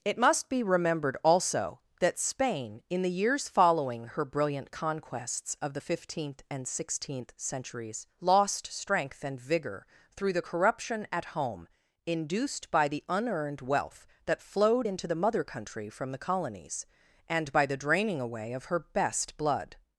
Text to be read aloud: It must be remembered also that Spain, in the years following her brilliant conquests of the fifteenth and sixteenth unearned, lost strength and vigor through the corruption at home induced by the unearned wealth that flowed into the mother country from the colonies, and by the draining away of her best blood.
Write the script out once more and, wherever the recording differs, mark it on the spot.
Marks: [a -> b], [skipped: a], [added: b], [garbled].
It must be remembered also that Spain, in the years following her brilliant conquests of the fifteenth and sixteenth [unearned, -> centuries] lost strength and vigor through the corruption at home induced by the unearned wealth that flowed into the mother country from the colonies, and by the draining away of her best blood.